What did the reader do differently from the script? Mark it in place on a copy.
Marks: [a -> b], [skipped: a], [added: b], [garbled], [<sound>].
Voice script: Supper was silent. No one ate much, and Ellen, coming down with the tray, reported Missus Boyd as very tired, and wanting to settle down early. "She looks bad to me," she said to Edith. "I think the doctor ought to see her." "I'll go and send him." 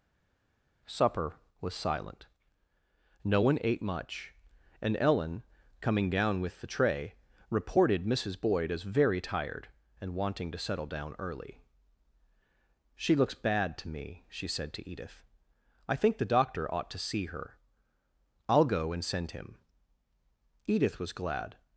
Supper was silent. No one ate much, and Ellen, coming down with the tray, reported Missus Boyd as very tired, and wanting to settle down early. "She looks bad to me," she said to Edith. "I think the doctor ought to see her." "I'll go and send him." [added: Edith was glad]